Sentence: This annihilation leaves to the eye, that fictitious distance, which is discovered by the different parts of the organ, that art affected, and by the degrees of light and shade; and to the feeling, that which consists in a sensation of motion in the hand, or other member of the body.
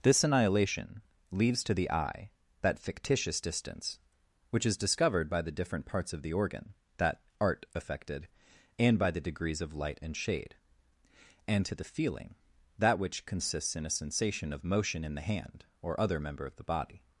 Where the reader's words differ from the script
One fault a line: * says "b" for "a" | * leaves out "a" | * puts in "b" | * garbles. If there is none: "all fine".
all fine